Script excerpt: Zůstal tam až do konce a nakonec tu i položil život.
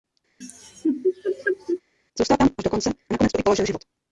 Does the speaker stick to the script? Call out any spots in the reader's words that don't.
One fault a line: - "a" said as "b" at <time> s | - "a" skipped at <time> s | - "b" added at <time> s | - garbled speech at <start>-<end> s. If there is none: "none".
none